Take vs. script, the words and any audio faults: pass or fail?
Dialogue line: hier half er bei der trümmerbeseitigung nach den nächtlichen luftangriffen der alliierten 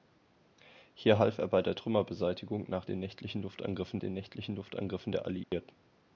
fail